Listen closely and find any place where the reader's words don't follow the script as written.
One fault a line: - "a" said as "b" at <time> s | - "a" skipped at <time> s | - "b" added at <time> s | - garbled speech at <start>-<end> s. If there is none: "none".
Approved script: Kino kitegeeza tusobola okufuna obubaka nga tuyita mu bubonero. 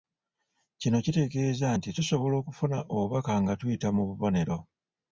- "nti" added at 1.8 s